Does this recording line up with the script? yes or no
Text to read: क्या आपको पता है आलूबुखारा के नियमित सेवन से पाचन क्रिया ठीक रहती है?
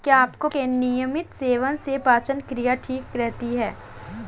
no